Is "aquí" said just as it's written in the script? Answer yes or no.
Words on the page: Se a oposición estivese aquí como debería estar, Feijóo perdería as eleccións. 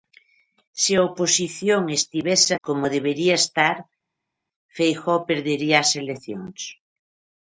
no